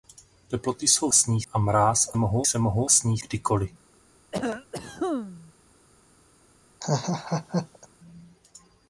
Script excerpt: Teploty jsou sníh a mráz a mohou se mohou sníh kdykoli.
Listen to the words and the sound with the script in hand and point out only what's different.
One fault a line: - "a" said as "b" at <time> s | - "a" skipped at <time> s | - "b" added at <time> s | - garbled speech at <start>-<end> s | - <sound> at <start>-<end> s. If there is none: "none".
- cough at 4.3-5.5 s
- laugh at 6.8-7.9 s